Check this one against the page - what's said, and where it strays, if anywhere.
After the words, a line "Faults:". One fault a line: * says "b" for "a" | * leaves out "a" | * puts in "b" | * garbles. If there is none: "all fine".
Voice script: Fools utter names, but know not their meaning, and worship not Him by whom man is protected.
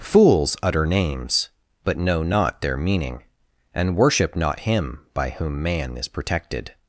Fools utter names, but know not their meaning, and worship not Him by whom man is protected.
Faults:
all fine